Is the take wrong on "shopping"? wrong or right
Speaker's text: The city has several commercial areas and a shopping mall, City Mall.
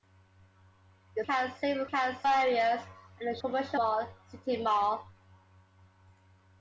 wrong